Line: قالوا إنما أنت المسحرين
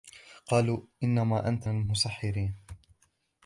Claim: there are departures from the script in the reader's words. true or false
false